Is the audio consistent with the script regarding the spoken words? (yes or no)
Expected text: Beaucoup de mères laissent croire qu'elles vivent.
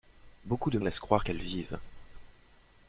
no